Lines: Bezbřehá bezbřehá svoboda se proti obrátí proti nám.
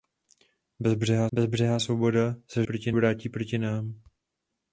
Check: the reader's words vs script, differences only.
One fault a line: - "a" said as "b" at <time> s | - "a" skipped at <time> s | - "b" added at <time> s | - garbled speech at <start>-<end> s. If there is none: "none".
none